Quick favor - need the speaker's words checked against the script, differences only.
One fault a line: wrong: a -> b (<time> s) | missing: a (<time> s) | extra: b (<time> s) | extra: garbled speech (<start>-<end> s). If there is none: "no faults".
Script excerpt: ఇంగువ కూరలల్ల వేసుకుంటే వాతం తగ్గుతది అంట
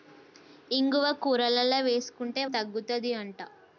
missing: వాతం (2.4 s)